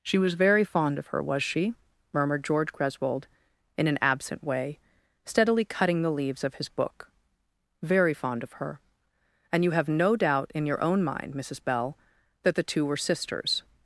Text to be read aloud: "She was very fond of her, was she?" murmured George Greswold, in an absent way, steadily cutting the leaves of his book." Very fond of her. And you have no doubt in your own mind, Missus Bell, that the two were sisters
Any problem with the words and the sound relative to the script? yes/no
no